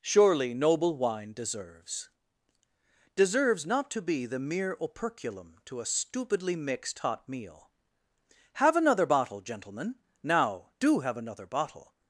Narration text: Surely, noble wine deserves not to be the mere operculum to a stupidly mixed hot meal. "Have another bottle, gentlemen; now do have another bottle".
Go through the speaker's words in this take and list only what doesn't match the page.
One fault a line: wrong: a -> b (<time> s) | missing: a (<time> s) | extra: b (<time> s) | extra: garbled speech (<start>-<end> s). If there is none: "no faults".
extra: deserves (3.1 s)